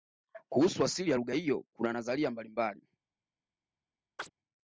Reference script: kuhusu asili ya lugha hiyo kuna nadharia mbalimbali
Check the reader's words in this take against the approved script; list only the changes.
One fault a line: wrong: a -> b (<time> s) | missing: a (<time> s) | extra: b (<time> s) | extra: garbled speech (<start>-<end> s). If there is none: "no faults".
no faults